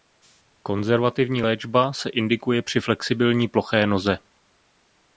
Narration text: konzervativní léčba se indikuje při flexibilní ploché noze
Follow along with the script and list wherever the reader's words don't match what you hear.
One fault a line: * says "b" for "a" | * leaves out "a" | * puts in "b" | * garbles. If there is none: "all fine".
all fine